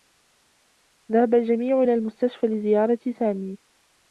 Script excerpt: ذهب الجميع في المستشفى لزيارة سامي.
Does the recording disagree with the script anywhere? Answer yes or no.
yes